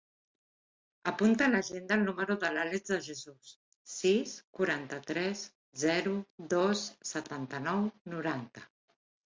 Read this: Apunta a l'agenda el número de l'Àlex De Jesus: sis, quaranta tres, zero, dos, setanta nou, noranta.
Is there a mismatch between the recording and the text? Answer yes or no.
no